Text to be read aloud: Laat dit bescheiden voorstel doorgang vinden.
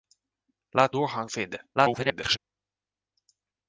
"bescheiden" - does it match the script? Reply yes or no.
no